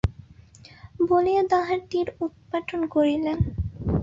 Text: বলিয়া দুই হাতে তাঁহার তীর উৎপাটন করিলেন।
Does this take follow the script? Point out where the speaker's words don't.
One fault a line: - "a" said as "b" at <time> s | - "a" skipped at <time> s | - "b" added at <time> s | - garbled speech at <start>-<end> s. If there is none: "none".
- "দুই হাতে" skipped at 1.4 s